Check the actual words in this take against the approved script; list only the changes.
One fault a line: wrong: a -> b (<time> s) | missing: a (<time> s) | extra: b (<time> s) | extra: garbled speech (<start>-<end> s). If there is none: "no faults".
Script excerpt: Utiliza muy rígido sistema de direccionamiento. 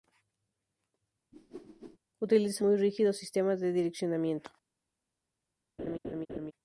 no faults